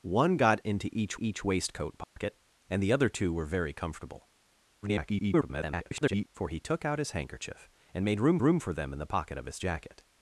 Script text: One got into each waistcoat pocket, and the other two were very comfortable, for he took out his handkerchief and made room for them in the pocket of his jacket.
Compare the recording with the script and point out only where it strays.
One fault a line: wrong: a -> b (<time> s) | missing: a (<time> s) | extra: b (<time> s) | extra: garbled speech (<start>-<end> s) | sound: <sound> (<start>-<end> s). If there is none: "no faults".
extra: each (1.2 s)
sound: dropout (2.0-2.2 s)
extra: garbled speech (4.8-6.3 s)
extra: room (8.4 s)